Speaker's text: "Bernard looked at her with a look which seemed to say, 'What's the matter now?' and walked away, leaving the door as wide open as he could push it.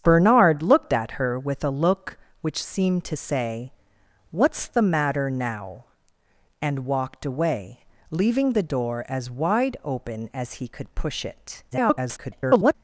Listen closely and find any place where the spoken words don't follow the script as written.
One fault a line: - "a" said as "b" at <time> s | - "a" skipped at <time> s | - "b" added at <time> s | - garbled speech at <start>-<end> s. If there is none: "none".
- garbled speech at 11.7-12.7 s